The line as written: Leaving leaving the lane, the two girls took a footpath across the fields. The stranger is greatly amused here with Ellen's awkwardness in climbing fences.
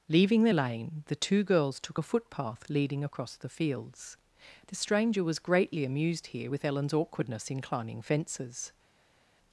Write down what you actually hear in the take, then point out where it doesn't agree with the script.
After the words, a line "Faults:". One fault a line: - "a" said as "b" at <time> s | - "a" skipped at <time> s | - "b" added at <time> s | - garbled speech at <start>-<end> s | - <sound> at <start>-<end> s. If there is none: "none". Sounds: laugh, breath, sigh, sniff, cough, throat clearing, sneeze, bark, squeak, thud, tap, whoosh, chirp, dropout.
Leaving the lane, the two girls took a footpath leading across the fields. The stranger was greatly amused here with Ellen's awkwardness in climbing fences.
Faults:
- "leaving" skipped at 0.4 s
- "leading" added at 2.7 s
- "is" said as "was" at 5.2 s